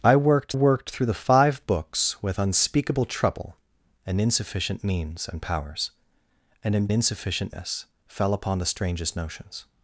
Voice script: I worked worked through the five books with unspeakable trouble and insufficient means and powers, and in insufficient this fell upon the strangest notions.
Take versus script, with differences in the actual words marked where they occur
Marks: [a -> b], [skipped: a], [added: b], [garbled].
I worked worked through the five books with unspeakable trouble and insufficient means and powers, and in insufficient this fell upon the strangest notions.